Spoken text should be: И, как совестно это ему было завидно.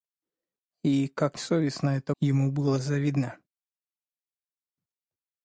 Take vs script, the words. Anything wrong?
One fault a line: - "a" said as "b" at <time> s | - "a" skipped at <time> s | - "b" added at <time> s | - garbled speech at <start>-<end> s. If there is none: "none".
none